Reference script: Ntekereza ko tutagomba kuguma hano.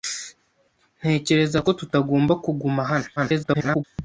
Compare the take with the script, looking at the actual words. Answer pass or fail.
fail